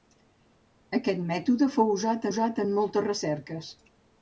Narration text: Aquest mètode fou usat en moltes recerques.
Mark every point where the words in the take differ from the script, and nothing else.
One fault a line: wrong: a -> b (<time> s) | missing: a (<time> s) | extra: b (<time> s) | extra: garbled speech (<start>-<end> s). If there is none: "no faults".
extra: usat (2.3 s)